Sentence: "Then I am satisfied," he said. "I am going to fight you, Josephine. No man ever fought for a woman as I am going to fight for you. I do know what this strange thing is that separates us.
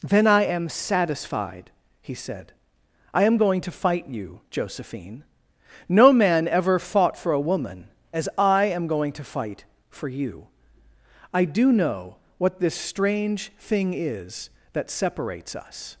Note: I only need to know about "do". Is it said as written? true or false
true